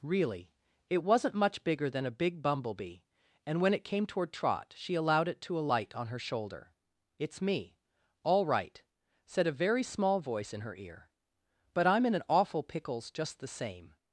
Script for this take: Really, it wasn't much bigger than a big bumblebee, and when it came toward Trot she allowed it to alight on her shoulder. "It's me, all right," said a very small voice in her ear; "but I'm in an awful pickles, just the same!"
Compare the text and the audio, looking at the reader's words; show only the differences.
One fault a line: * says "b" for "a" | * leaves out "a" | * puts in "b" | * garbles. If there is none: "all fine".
all fine